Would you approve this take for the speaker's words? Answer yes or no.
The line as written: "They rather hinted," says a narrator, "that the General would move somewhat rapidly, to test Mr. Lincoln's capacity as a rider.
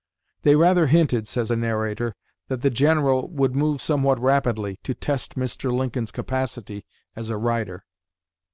yes